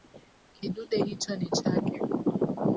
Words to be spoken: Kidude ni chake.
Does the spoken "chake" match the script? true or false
true